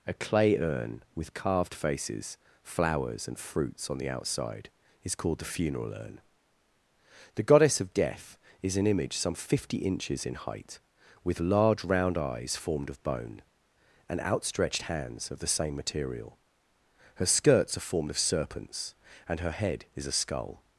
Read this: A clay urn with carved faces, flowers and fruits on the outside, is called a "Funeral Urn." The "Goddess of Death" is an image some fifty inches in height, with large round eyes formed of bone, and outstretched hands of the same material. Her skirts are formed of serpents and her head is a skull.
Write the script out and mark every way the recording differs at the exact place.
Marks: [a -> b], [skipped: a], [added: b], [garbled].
A clay urn with carved faces, flowers and fruits on the outside, is called [a -> the] "Funeral Urn." The "Goddess of Death" is an image some fifty inches in height, with large round eyes formed of bone, and outstretched hands of the same material. Her skirts are formed of serpents and her head is a skull.